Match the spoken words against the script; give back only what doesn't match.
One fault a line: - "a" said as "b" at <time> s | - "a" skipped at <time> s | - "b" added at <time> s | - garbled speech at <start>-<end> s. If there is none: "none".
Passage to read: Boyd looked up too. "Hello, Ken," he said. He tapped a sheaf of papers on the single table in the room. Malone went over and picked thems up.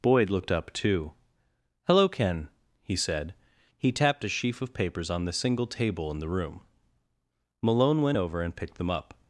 - "thems" said as "them" at 8.8 s